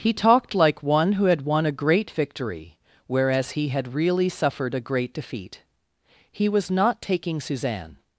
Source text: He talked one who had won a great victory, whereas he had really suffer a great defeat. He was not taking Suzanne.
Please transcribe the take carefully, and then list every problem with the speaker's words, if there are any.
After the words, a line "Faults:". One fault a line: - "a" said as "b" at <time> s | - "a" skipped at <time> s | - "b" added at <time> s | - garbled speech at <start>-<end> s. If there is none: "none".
He talked like one who had won a great victory, whereas he had really suffered a great defeat. He was not taking Suzanne.
Faults:
- "like" added at 0.6 s
- "suffer" said as "suffered" at 4.3 s